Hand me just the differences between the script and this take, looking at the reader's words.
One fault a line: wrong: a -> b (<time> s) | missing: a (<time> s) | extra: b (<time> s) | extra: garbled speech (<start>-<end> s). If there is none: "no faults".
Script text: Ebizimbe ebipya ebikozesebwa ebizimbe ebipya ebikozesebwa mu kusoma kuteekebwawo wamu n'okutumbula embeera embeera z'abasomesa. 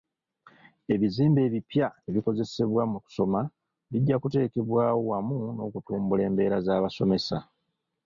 missing: ebizimbe ebipya ebikozesebwa (2.8 s)
extra: bijja (3.9 s)
missing: embeera (6.6 s)